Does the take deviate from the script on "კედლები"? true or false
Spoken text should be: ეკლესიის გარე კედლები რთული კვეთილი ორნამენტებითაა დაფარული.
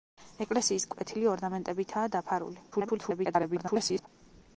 true